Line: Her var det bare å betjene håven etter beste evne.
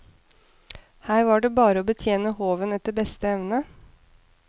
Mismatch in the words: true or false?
false